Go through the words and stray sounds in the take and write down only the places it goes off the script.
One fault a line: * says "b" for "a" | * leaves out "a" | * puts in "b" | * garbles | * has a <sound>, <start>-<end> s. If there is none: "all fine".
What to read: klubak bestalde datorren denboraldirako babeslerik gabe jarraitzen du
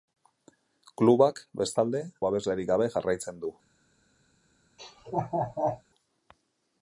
* leaves out "datorren denboraldirako"
* has a laugh, 4.8-5.8 s